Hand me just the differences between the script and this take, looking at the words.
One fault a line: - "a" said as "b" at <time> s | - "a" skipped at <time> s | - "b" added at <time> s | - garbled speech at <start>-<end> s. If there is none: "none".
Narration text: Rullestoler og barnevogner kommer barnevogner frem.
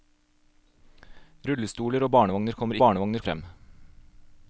none